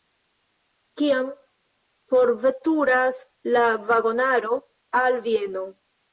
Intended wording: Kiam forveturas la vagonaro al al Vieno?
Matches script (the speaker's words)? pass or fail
fail